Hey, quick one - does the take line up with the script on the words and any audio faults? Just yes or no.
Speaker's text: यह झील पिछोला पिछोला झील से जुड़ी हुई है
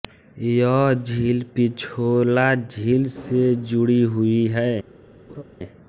no